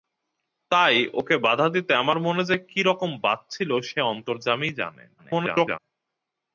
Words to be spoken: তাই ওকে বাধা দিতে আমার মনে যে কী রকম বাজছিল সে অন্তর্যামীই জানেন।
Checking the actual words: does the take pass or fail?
fail